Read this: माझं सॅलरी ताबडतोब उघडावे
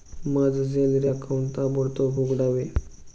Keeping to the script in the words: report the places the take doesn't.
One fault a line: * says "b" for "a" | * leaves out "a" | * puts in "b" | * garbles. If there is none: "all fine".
* puts in "अकाऊंट"